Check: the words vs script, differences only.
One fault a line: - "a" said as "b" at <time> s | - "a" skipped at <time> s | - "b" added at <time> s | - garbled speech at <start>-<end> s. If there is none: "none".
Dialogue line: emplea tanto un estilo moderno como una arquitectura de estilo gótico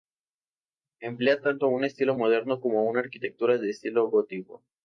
none